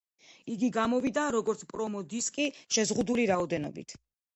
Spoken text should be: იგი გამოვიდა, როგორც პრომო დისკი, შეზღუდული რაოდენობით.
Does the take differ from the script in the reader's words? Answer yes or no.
no